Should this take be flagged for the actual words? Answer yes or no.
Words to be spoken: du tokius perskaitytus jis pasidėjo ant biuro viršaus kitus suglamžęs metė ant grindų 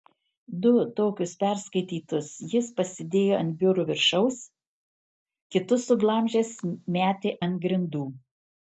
no